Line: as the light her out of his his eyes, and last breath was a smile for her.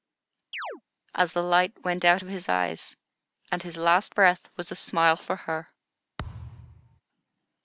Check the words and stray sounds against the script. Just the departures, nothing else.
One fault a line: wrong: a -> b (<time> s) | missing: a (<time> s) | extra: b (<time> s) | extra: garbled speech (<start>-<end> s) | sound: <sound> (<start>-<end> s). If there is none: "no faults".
sound: chirp (0.5-0.8 s)
wrong: her -> went (1.8 s)
missing: his (2.5 s)
extra: his (3.6 s)
sound: thud (6.2-7.0 s)